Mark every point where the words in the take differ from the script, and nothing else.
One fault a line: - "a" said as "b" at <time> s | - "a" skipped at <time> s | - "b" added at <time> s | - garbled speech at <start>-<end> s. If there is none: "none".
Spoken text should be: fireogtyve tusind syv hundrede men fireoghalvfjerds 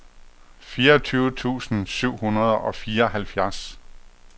- "men" said as "og" at 2.6 s